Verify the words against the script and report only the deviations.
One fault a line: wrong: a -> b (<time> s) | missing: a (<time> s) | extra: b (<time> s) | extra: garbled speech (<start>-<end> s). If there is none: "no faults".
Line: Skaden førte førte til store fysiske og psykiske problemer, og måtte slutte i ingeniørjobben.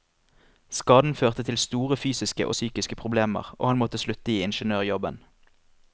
missing: førte (1.4 s)
extra: han (3.7 s)